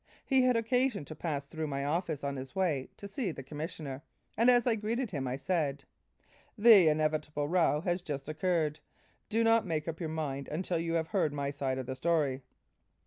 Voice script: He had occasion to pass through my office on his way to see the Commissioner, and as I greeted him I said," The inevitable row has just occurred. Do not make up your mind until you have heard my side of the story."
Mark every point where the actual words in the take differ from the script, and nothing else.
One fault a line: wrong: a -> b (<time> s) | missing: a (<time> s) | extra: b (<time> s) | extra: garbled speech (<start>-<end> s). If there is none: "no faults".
no faults